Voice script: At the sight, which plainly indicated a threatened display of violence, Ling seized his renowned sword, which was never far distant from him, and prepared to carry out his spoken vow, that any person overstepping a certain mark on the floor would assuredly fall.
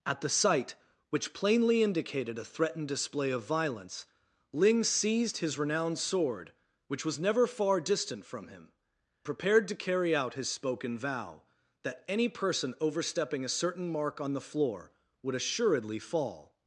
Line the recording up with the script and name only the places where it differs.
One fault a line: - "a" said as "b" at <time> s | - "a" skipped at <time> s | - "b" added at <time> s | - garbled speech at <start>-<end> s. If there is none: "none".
- "and" skipped at 8.7 s